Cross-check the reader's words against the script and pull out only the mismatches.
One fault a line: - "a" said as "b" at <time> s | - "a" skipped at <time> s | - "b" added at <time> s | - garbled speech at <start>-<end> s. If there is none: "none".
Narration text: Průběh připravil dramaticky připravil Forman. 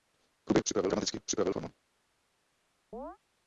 none